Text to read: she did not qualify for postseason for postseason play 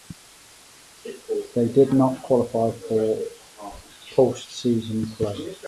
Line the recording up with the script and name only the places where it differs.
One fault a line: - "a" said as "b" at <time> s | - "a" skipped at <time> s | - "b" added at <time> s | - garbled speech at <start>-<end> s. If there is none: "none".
- "she" said as "they" at 1.5 s
- "for postseason" skipped at 5.2 s